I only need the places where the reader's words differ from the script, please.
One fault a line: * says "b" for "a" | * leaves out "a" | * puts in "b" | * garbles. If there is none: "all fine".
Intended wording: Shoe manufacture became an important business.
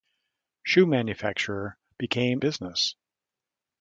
* leaves out "an important"